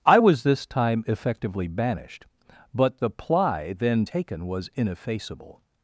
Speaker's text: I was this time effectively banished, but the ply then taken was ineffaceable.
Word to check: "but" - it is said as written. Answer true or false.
true